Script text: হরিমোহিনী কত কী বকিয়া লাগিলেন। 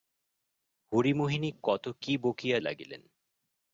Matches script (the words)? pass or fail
pass